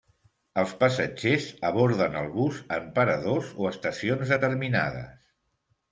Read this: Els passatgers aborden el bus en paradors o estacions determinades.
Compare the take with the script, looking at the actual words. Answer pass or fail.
pass